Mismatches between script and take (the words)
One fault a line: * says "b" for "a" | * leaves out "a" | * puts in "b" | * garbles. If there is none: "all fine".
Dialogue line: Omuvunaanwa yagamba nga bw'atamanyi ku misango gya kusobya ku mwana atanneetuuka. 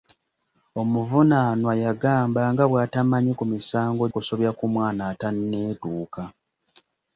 * leaves out "gya"